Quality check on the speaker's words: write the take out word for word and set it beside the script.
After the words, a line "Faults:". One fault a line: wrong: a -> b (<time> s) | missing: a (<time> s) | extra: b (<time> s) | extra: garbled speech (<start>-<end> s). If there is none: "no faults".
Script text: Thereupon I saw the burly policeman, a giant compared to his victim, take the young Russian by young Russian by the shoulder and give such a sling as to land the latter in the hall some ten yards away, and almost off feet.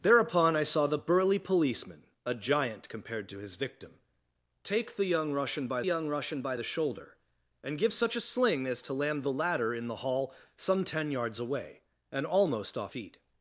Thereupon I saw the burly policeman, a giant compared to his victim, take the young Russian by young Russian by the shoulder and give such a sling as to land the latter in the hall some ten yards away, and almost off feet.
Faults:
no faults